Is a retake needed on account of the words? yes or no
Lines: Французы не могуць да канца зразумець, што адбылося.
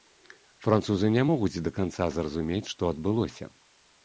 no